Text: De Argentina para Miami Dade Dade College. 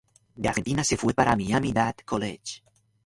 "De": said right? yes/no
yes